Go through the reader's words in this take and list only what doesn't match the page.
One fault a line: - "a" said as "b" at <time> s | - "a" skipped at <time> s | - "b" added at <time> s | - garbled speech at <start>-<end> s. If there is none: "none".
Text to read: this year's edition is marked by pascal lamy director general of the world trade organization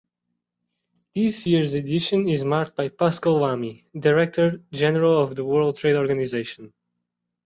none